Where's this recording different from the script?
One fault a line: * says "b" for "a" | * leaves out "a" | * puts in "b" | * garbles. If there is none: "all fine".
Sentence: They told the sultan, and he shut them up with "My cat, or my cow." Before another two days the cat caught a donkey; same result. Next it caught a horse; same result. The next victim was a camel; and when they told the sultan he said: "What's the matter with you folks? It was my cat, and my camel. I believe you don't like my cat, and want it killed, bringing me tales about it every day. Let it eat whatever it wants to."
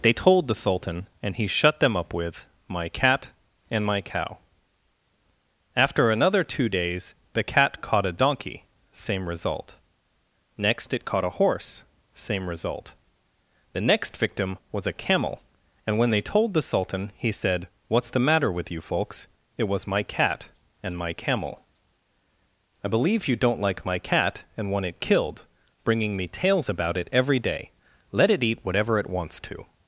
* says "and" for "or"
* says "After" for "Before"